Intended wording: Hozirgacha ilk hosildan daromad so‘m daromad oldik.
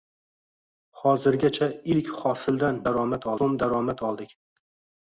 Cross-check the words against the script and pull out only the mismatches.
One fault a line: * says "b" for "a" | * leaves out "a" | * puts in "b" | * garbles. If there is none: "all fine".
all fine